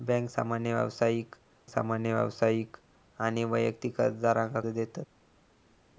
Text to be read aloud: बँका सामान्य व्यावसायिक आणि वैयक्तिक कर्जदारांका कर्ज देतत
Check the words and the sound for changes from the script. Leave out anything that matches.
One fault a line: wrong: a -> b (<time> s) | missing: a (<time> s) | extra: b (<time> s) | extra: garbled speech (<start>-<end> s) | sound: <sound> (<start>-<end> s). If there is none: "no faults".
extra: सामान्य व्यावसायिक (1.7 s)
missing: कर्ज (4.6 s)